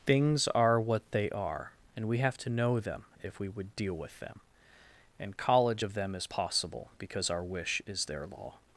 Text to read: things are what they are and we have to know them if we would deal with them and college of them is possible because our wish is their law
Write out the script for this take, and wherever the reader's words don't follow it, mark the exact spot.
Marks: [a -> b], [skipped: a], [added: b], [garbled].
things are what they are and we have to know them if we would deal with them and college of them is possible because our wish is their law